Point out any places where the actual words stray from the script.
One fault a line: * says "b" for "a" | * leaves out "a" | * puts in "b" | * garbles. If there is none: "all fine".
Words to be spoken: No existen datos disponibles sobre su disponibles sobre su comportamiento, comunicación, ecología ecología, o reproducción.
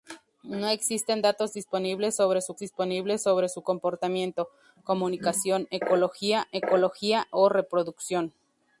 all fine